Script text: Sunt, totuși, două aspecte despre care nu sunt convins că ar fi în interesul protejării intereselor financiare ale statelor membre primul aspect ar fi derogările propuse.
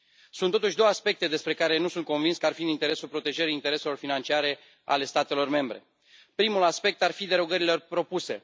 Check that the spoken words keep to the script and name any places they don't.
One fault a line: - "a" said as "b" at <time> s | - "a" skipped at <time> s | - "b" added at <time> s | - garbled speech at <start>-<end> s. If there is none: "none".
none